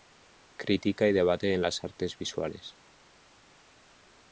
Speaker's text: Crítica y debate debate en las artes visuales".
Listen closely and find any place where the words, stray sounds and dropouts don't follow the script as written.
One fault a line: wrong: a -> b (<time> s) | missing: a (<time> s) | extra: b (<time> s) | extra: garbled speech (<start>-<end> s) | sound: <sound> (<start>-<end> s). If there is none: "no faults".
missing: debate (1.5 s)